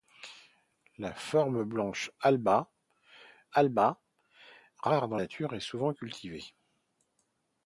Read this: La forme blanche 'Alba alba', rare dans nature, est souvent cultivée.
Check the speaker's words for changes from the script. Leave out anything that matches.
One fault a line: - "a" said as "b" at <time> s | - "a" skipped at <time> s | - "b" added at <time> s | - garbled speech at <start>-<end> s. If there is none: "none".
none